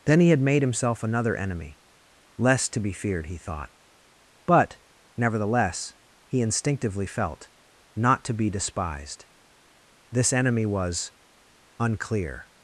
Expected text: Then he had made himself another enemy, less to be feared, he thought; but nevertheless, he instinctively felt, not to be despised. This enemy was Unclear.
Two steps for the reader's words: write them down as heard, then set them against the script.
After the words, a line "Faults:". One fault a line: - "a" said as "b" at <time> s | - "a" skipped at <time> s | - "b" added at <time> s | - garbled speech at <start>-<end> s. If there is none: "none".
Then he had made himself another enemy, less to be feared, he thought; but nevertheless, he instinctively felt, not to be despised. This enemy was Unclear.
Faults:
none